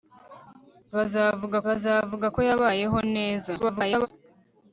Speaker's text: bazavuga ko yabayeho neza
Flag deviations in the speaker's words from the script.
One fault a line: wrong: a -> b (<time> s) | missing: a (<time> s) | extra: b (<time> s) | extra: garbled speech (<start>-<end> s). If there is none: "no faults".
extra: bazavuga (1.7 s)
extra: garbled speech (3.6-4.1 s)